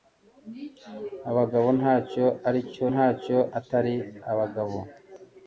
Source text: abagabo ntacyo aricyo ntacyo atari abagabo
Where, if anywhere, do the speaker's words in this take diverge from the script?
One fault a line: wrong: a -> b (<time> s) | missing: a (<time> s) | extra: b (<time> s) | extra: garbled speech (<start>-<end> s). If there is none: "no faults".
no faults